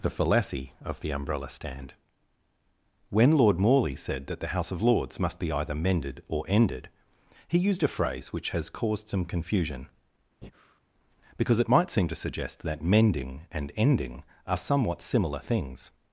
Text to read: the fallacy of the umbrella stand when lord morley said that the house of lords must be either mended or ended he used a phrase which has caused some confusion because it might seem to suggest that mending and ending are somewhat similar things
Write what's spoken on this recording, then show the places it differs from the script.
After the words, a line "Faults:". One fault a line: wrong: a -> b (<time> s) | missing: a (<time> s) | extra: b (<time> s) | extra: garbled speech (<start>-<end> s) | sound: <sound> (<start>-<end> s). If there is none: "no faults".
the fallacy of the umbrella stand when lord morley said that the house of lords must be either mended or ended he used a phrase which has caused some confusion because it might seem to suggest that mending and ending are somewhat similar things
Faults:
sound: breath (10.4-10.8 s)